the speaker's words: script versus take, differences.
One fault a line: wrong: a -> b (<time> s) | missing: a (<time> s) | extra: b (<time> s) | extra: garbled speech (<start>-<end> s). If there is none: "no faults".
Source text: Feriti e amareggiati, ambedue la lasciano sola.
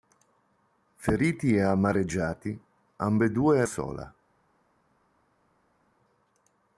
missing: la lasciano (3.6 s)